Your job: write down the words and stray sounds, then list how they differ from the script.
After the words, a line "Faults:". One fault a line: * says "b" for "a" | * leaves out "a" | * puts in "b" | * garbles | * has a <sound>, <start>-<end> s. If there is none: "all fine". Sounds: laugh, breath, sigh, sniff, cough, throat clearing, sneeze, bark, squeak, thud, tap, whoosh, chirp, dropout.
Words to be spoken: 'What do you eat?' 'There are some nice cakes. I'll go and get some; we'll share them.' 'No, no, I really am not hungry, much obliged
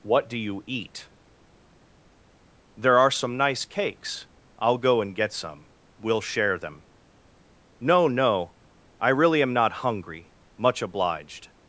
'What do you eat?' 'There are some nice cakes. I'll go and get some; we'll share them.' 'No, no, I really am not hungry, much obliged
Faults:
all fine